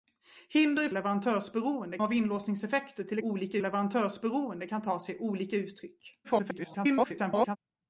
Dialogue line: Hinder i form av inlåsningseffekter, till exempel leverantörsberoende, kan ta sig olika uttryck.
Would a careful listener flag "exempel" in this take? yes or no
yes